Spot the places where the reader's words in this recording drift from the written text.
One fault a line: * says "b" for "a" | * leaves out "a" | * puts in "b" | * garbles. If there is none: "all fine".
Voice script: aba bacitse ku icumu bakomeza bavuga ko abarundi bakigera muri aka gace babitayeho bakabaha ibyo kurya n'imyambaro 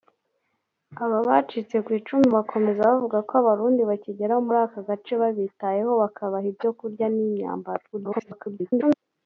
* garbles